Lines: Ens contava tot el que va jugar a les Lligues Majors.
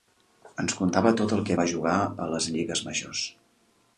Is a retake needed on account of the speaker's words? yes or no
no